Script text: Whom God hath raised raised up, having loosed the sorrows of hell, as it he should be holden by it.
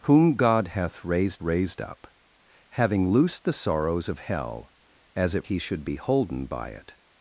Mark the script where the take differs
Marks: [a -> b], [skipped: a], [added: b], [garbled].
Whom God hath raised raised up, having loosed the sorrows of hell, as it he should be holden by it.